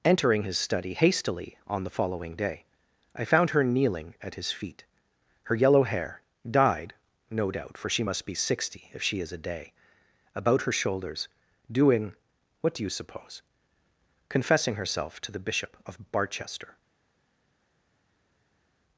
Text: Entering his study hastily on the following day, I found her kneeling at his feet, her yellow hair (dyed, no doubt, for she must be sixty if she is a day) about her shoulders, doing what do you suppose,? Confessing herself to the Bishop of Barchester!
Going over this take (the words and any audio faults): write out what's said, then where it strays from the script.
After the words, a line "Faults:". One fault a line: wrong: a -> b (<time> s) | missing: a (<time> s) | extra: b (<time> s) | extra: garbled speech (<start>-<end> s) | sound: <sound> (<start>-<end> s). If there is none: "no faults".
Entering his study hastily on the following day, I found her kneeling at his feet, her yellow hair (dyed, no doubt, for she must be sixty if she is a day) about her shoulders, doing what do you suppose,? Confessing herself to the Bishop of Barchester!
Faults:
no faults